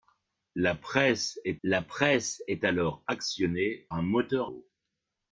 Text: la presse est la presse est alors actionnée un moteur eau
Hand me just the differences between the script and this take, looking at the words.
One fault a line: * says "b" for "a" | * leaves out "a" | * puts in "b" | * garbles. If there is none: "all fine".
all fine